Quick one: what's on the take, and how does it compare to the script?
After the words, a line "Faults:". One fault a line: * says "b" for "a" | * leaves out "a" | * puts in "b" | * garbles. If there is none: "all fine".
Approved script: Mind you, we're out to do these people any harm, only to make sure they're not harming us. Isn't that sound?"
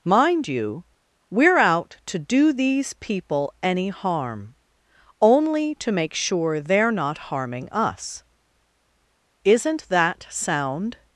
Mind you, we're out to do these people any harm, only to make sure they're not harming us. Isn't that sound?"
Faults:
all fine